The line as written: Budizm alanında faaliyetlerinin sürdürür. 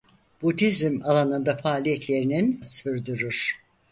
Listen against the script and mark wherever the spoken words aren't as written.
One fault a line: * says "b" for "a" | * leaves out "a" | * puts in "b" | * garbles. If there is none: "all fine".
all fine